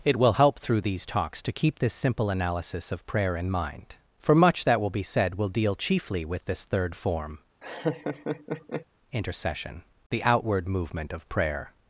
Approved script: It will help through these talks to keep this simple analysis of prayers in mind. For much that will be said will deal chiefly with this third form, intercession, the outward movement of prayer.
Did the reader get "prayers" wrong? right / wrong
wrong